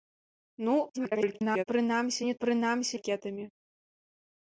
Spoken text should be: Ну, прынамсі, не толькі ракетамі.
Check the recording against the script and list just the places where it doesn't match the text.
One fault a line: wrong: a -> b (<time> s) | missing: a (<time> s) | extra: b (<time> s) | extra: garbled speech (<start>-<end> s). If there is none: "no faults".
extra: garbled speech (0.9-1.6 s)
wrong: толькі -> прынамсі (2.5 s)